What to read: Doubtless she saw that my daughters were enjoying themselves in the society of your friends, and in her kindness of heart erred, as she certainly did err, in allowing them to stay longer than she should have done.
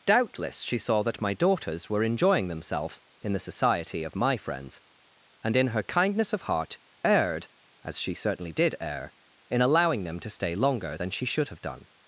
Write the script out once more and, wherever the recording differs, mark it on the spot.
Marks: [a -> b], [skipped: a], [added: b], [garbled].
Doubtless she saw that my daughters were enjoying themselves in the society of [your -> my] friends, and in her kindness of heart erred, as she certainly did err, in allowing them to stay longer than she should have done.